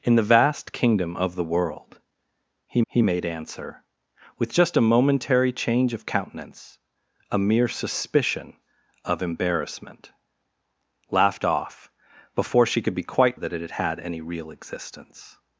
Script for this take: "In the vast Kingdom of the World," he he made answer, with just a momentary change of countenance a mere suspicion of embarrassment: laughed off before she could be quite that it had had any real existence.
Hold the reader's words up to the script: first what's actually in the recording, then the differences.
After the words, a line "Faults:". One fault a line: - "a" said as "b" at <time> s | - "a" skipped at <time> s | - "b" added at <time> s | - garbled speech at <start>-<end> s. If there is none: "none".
"In the vast Kingdom of the World," he he made answer, with just a momentary change of countenance a mere suspicion of embarrassment: laughed off before she could be quite that it had had any real existence.
Faults:
none